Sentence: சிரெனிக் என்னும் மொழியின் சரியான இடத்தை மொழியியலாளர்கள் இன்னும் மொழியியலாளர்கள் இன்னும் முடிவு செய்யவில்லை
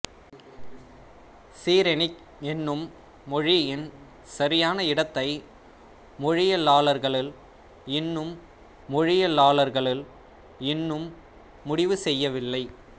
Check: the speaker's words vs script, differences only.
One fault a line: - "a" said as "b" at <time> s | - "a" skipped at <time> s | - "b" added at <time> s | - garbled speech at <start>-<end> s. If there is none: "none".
none